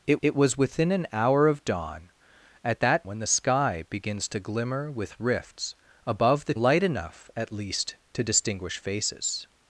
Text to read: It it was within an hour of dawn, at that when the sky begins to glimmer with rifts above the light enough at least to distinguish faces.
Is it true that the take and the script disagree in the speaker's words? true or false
false